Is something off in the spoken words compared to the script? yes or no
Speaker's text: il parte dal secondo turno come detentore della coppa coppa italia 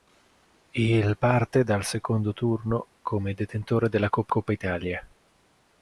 no